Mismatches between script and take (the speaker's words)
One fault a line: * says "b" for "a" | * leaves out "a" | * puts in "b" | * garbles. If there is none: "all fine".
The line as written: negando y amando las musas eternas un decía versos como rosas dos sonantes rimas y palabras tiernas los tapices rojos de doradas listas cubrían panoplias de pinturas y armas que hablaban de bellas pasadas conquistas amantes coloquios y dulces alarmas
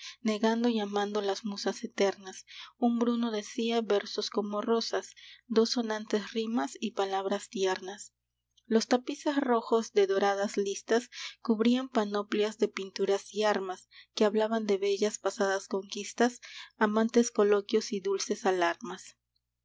* puts in "bruno"